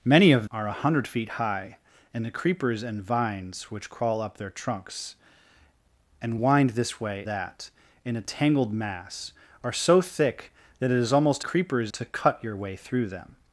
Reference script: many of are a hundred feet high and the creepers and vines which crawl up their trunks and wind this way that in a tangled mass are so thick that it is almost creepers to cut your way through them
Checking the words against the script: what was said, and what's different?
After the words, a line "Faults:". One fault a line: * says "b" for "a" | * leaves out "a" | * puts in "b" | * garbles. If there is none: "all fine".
many of are a hundred feet high and the creepers and vines which crawl up their trunks and wind this way that in a tangled mass are so thick that it is almost creepers to cut your way through them
Faults:
all fine